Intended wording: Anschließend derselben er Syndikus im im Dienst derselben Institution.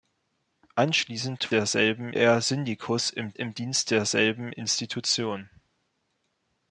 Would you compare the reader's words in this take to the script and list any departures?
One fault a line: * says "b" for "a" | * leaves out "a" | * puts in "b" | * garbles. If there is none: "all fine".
all fine